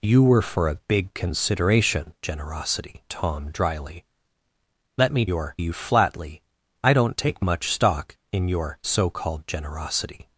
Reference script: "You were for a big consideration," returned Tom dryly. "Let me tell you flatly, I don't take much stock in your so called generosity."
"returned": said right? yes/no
no